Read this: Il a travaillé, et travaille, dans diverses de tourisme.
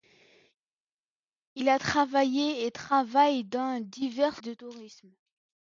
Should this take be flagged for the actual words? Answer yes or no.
no